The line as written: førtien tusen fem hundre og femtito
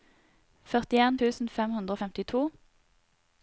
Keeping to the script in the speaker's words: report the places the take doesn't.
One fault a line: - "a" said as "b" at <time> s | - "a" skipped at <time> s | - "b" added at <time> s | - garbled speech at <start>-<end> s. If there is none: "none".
none